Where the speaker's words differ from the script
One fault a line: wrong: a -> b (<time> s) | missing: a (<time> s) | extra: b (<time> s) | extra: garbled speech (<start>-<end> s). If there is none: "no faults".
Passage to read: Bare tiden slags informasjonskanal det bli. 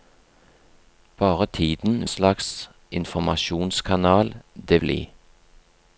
no faults